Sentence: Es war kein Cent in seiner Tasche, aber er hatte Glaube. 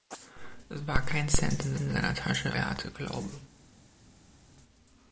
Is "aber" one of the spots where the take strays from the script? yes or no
yes